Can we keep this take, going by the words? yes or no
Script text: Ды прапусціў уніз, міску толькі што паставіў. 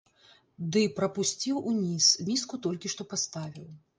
yes